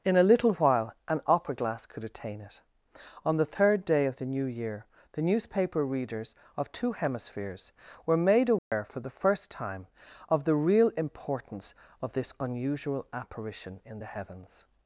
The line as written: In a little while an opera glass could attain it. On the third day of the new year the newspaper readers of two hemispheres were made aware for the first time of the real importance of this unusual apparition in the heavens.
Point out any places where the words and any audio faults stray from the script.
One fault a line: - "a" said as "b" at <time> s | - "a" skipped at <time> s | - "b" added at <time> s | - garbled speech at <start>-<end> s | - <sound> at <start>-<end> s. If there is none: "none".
- dropout at 8.6-8.7 s